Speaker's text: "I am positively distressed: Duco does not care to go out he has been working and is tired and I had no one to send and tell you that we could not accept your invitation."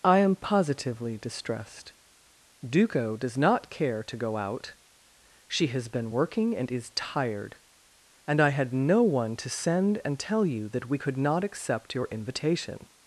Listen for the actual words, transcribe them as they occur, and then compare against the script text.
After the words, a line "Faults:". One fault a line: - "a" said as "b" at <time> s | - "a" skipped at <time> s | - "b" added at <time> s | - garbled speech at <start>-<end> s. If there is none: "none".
"I am positively distressed: Duco does not care to go out she has been working and is tired and I had no one to send and tell you that we could not accept your invitation."
Faults:
- "he" said as "she" at 5.5 s